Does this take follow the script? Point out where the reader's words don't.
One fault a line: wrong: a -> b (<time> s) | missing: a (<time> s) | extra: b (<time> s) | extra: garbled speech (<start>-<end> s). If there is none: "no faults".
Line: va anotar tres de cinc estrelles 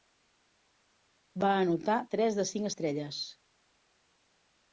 no faults